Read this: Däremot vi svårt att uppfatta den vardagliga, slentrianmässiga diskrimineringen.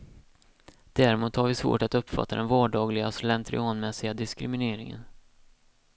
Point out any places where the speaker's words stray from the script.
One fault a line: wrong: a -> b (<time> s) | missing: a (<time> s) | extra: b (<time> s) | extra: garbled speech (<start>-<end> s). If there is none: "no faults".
extra: har (1.4 s)